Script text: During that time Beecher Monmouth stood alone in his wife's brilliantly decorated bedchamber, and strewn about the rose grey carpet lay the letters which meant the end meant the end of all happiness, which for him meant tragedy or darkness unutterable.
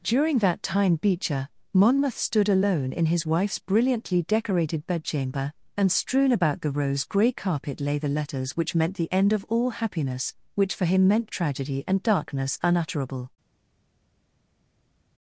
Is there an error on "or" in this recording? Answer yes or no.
yes